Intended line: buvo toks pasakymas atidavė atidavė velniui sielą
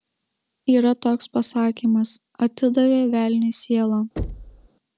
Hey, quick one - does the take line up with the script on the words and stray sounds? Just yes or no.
no